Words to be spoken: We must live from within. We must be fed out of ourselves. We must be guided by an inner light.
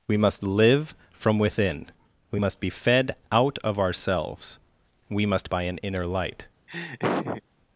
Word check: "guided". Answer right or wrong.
wrong